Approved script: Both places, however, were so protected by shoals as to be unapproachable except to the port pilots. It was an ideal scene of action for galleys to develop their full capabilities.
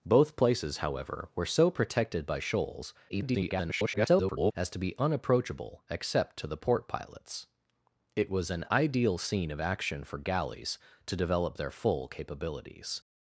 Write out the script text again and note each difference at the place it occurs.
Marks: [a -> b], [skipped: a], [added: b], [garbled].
Both places, however, were so protected by shoals [garbled] as to be unapproachable except to the port pilots. It was an ideal scene of action for galleys to develop their full capabilities.